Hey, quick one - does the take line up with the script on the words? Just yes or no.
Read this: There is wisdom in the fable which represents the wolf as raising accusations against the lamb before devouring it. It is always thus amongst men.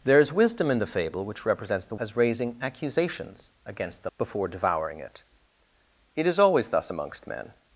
no